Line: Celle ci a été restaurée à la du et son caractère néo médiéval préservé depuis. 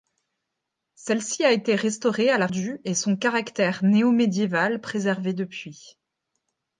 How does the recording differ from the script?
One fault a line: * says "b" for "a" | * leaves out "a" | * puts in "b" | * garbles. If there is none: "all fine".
all fine